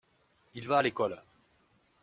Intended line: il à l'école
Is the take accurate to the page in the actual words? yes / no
no